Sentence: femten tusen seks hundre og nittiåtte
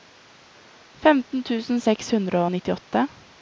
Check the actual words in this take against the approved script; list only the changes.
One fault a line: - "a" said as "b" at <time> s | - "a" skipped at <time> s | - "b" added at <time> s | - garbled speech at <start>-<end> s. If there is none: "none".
none